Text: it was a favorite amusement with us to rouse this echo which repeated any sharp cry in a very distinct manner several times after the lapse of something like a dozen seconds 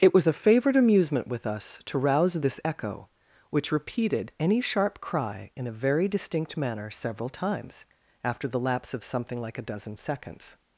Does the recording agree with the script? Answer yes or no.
yes